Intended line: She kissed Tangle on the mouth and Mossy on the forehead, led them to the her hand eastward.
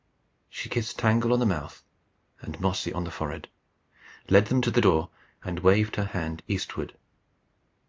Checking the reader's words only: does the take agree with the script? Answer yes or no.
no